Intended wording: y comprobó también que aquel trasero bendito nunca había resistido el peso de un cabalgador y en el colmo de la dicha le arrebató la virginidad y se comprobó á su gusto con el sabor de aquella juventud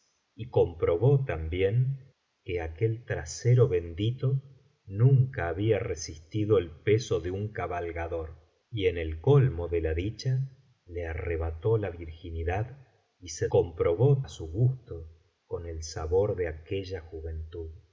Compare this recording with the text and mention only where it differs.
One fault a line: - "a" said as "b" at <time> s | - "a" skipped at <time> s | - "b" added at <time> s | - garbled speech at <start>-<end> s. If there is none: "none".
none